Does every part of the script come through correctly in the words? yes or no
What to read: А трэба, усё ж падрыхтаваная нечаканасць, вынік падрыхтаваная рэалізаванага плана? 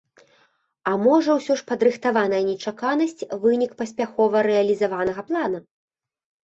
no